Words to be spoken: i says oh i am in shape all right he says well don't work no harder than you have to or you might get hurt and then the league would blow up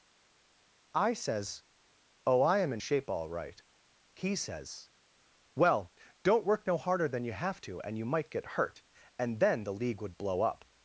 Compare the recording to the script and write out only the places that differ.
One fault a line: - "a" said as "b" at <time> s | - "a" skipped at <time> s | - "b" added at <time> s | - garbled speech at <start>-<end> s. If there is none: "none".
- "or" said as "and" at 7.8 s